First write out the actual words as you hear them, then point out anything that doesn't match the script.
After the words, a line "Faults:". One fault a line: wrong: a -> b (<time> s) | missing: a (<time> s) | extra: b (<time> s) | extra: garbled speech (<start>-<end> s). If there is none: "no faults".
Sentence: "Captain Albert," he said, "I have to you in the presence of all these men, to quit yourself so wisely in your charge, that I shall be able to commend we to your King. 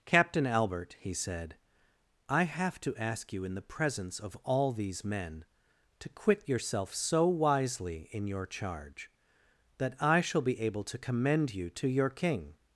"Captain Albert," he said, "I have to ask you in the presence of all these men, to quit yourself so wisely in your charge, that I shall be able to commend you to your King.
Faults:
extra: ask (3.0 s)
wrong: we -> you (11.5 s)